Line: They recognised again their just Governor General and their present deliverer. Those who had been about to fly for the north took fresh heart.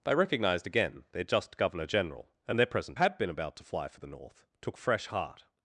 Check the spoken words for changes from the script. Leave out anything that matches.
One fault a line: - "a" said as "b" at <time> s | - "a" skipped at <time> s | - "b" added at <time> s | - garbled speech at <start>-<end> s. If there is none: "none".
- "deliverer Those who" skipped at 3.0 s